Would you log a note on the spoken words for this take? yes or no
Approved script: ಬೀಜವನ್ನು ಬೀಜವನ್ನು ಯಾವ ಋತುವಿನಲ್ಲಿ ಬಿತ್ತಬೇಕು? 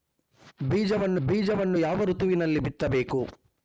no